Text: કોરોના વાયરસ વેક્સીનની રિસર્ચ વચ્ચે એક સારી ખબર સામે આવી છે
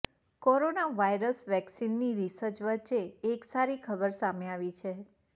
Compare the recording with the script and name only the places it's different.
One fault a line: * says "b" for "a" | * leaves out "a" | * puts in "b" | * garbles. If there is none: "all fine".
all fine